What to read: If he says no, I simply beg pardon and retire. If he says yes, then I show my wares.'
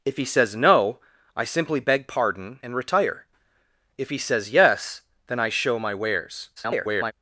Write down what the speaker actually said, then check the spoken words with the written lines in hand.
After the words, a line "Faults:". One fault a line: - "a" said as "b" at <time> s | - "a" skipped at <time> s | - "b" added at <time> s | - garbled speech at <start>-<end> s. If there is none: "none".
If he says no, I simply beg pardon and retire. If he says yes, then I show my wares.' [garbled]
Faults:
- garbled speech at 6.6-7.1 s